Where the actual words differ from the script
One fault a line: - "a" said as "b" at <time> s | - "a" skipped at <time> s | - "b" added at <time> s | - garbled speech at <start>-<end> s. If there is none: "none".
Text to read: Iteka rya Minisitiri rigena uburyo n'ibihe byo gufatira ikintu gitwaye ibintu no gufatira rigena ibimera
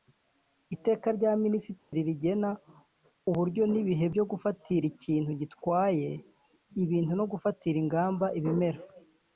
- "rigena" said as "ingamba" at 7.8 s